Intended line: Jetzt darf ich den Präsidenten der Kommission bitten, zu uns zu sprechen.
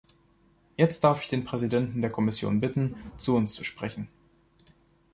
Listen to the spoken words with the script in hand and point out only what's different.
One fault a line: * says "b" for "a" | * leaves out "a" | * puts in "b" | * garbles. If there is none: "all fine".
all fine